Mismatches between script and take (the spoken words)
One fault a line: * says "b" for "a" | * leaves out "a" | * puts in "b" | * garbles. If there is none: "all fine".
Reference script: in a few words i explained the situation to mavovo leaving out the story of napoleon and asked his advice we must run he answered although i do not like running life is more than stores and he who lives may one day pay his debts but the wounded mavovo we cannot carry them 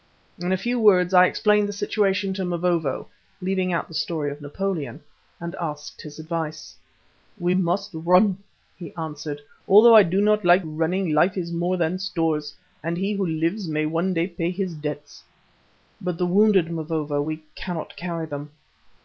all fine